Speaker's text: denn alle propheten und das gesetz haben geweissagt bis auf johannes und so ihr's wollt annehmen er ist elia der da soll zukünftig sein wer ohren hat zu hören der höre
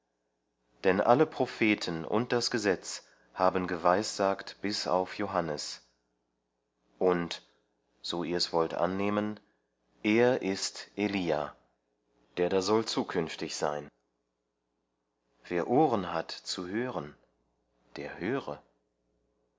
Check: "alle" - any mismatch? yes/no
no